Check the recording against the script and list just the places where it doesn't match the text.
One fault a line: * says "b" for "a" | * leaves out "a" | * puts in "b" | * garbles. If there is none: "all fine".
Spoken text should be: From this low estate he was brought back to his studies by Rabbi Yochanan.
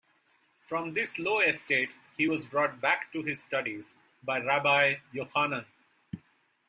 all fine